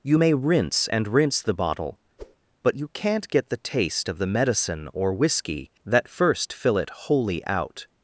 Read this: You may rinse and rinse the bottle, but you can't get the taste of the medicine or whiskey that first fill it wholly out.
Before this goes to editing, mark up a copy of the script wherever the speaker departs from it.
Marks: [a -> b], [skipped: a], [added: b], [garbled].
You may rinse and rinse the bottle, but you can't get the taste of the medicine or whiskey that first fill it wholly out.